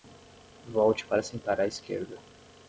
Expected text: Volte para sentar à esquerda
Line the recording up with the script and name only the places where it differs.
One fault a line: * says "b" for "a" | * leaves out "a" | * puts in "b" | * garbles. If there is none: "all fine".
all fine